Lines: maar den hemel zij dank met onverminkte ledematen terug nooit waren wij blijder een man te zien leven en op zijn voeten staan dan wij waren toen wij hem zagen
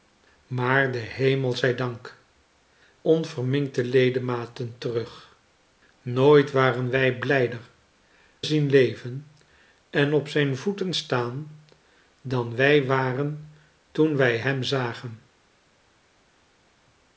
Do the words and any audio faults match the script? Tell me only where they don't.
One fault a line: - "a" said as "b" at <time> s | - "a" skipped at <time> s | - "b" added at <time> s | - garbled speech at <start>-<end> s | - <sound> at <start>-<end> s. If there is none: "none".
- "met" skipped at 2.2 s
- "een man te" skipped at 7.6 s